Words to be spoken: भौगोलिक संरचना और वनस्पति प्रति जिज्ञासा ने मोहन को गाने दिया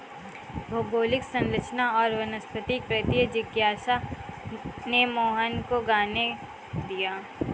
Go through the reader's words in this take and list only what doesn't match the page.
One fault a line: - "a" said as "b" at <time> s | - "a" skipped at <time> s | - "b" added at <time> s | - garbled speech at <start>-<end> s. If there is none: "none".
none